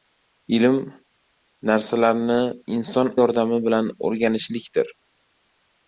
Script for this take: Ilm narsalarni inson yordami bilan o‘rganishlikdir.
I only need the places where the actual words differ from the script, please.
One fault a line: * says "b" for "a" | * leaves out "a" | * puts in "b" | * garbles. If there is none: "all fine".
all fine